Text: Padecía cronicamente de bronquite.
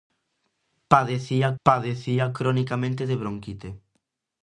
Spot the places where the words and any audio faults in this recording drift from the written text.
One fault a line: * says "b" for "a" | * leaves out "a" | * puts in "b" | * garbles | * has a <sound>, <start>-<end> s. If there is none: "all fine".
* puts in "padecía"